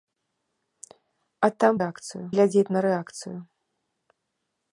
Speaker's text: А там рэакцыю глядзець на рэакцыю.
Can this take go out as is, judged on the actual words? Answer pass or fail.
pass